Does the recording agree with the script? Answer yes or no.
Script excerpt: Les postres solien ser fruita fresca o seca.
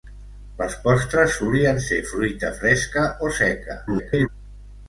no